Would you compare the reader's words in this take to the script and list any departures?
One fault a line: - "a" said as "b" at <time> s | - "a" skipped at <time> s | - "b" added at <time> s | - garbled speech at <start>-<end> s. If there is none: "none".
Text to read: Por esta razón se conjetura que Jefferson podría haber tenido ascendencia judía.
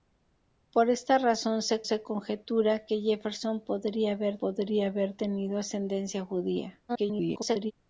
- "se" added at 1.8 s
- "podría haber" added at 4.4 s
- garbled speech at 6.9-7.7 s